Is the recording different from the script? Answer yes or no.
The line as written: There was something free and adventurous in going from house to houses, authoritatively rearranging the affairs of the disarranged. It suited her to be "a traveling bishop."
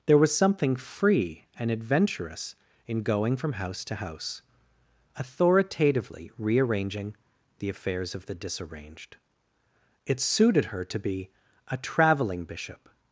yes